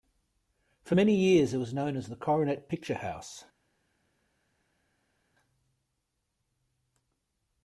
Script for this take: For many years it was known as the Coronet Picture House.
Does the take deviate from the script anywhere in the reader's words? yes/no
no